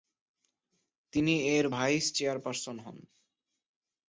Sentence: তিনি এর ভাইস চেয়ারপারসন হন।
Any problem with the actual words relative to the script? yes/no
no